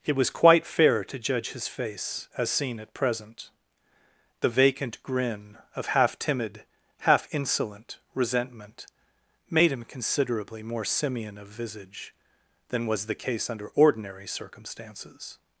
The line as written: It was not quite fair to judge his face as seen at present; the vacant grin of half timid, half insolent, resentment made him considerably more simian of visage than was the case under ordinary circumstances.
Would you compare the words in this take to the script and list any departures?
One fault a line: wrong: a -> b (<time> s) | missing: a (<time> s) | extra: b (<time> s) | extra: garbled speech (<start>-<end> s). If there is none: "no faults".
missing: not (0.3 s)